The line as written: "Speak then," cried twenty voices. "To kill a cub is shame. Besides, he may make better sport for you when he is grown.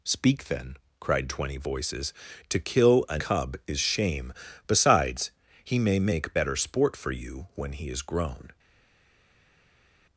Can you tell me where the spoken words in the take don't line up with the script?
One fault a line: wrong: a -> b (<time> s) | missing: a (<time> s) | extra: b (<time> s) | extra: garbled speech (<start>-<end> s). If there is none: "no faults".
no faults